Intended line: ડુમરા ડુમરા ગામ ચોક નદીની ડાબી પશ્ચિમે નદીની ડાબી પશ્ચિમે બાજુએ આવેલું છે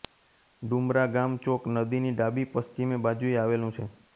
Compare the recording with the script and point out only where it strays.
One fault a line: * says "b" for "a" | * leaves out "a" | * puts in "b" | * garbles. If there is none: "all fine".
* leaves out "ડુમરા"
* leaves out "નદીની ડાબી પશ્ચિમે"